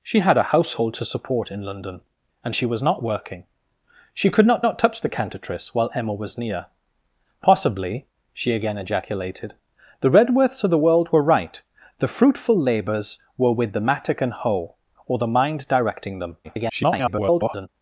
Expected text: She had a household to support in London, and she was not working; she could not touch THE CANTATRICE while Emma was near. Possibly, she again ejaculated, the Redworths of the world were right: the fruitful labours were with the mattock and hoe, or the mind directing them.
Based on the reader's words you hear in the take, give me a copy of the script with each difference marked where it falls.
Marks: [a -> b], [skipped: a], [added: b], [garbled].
She had a household to support in London, and she was not working; she could not [added: not] touch THE CANTATRICE while Emma was near. Possibly, she again ejaculated, the Redworths of the world were right: the fruitful labours were with the mattock and hoe, or the mind directing them. [garbled]